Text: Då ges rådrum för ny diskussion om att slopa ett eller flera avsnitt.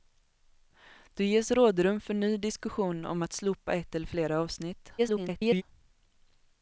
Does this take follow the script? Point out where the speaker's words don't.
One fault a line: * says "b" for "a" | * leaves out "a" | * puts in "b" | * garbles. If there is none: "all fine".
* garbles